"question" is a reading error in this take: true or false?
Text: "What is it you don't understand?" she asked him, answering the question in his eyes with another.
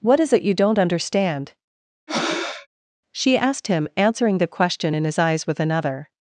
false